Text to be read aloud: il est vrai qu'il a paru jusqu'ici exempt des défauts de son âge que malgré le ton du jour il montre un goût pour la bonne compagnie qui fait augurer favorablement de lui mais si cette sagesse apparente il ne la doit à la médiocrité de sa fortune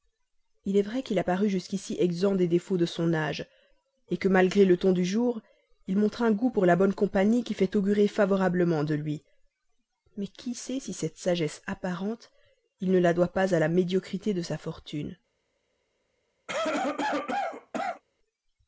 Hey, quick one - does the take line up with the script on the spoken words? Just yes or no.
no